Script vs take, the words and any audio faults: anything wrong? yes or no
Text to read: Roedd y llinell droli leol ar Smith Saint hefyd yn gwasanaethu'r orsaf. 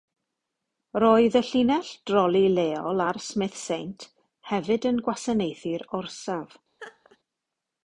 yes